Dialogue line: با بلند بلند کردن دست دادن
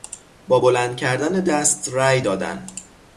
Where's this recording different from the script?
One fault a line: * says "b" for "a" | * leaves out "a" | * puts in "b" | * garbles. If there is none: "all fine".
* leaves out "بلند"
* puts in "رای"